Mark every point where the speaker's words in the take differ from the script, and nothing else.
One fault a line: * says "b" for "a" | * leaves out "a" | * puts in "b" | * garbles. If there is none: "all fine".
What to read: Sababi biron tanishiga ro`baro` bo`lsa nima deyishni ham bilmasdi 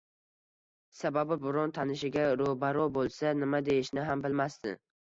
all fine